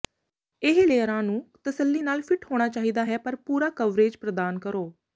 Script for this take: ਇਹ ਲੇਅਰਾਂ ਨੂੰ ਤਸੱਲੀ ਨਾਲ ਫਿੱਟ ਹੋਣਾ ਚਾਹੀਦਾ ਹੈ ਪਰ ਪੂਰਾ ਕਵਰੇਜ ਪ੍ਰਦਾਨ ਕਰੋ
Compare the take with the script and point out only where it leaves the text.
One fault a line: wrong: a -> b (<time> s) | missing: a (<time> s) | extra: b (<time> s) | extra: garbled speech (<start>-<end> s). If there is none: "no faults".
no faults